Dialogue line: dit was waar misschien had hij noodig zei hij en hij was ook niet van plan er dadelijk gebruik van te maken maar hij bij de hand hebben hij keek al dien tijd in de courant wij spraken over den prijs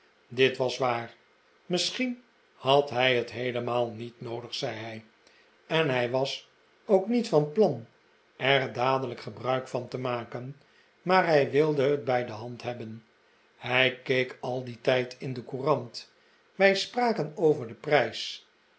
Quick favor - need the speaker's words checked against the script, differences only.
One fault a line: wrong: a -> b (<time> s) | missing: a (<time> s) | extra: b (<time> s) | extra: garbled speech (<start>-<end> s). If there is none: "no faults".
extra: het heelemaal niet (3.1 s)
extra: wilde het (11.5 s)